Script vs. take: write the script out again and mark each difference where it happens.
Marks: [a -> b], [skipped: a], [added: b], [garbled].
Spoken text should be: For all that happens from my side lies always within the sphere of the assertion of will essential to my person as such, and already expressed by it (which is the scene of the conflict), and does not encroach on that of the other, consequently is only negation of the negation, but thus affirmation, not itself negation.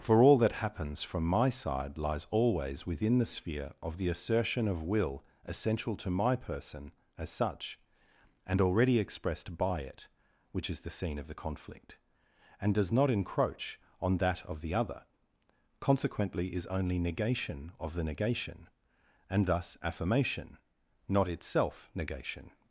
For all that happens from my side lies always within the sphere of the assertion of will essential to my person as such, and already expressed by it (which is the scene of the conflict), and does not encroach on that of the other, consequently is only negation of the negation, [but -> and] thus affirmation, not itself negation.